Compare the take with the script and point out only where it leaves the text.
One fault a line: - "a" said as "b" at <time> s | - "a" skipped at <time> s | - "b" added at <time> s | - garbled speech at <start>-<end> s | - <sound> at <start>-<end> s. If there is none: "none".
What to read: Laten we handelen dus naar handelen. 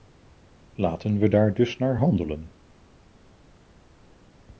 - "handelen" said as "daar" at 1.3 s